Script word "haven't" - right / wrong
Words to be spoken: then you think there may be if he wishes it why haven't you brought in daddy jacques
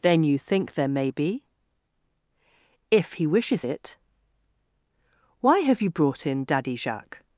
wrong